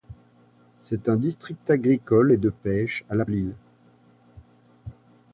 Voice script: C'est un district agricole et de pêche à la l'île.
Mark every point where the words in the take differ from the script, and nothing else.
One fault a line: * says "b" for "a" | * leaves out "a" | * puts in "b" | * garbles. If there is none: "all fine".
all fine